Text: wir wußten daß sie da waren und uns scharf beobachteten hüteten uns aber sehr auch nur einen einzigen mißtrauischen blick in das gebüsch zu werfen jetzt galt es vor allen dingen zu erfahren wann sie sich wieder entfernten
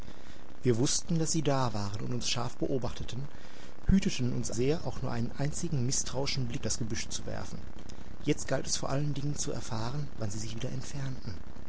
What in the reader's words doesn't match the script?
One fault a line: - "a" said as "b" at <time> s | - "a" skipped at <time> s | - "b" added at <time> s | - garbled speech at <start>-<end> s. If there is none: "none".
- "aber" skipped at 4.5 s
- "in" skipped at 6.6 s